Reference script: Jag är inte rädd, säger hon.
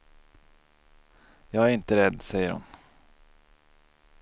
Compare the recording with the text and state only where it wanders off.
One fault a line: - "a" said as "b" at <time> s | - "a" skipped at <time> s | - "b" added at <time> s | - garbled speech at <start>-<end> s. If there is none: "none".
none